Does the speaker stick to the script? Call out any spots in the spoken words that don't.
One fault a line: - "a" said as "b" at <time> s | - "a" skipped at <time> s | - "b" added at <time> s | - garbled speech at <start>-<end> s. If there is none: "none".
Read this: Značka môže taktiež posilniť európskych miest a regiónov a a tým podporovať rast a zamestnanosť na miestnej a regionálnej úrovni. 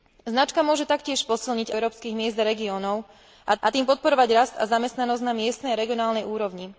none